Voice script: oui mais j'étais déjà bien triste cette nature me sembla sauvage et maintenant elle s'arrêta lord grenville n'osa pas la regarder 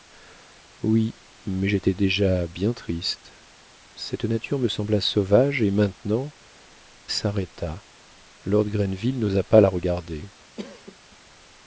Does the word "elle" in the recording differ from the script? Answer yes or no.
yes